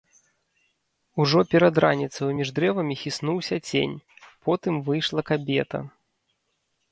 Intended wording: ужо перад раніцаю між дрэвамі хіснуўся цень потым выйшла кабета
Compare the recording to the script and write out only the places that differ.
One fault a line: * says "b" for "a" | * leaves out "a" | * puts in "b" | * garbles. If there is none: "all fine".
all fine